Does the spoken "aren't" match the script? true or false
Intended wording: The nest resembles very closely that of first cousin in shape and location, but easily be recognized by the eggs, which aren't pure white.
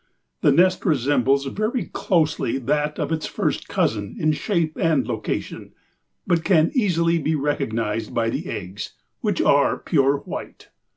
false